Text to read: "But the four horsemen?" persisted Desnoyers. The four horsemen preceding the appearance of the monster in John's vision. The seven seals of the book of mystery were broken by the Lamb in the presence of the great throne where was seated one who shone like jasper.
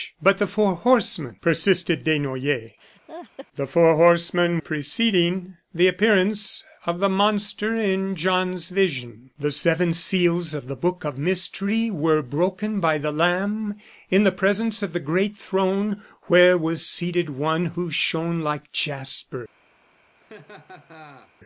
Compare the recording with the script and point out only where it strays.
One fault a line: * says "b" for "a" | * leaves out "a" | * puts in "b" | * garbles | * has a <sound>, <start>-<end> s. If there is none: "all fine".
* has a laugh, 2.8-3.5 s
* has a laugh, 20.2-21.3 s